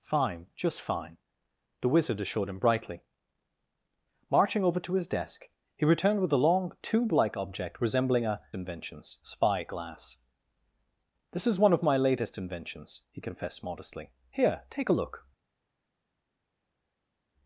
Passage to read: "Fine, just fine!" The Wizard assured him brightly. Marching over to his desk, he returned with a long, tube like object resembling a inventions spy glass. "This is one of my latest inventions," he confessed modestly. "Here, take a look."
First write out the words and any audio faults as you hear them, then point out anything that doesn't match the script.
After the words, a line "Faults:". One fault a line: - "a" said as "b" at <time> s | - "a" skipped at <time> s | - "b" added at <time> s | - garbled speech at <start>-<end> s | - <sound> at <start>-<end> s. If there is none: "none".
"Fine, just fine!" The Wizard assured him brightly. Marching over to his desk, he returned with a long, tube like object resembling a inventions spy glass. "This is one of my latest inventions," he confessed modestly. "Here, take a look."
Faults:
none